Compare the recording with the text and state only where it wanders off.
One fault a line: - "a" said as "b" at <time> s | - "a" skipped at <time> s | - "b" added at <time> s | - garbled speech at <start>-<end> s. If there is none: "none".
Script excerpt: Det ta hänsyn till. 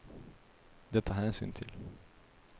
none